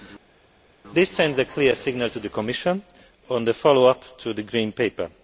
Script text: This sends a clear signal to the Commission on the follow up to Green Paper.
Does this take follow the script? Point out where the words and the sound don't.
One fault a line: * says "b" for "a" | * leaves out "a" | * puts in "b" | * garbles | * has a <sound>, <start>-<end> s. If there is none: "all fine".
* puts in "the"